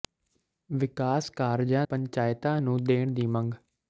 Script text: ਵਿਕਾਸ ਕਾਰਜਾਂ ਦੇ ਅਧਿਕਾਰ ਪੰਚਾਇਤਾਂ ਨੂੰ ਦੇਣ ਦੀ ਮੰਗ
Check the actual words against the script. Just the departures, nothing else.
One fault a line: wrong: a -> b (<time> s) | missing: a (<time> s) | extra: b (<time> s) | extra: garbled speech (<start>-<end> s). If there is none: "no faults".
missing: ਦੇ ਅਧਿਕਾਰ (1.9 s)